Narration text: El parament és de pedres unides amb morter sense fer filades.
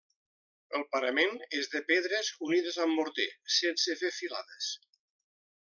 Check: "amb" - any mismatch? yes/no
no